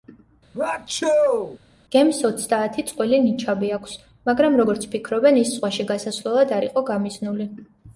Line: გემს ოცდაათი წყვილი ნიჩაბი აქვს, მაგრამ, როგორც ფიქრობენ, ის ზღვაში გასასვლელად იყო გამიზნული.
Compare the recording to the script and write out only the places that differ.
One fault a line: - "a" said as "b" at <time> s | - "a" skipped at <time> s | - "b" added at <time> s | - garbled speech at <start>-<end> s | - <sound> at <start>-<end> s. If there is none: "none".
- sneeze at 0.5-1.6 s
- "არ" added at 6.6 s